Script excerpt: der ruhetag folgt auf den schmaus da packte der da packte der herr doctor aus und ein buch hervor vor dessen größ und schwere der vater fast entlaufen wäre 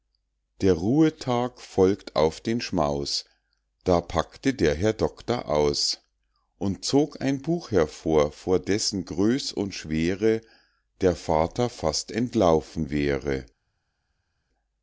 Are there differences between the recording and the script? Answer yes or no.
yes